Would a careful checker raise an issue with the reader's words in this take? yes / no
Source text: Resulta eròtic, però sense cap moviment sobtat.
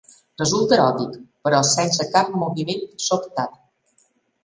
no